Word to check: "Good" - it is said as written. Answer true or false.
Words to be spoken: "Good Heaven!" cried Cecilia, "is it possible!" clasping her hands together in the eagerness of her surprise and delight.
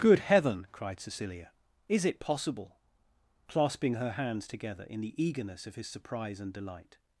true